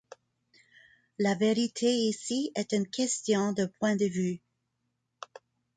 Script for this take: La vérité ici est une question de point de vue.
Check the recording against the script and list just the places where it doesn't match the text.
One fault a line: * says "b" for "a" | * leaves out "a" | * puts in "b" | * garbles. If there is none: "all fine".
all fine